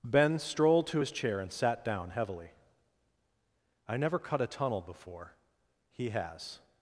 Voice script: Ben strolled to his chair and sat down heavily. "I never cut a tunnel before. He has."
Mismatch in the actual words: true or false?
false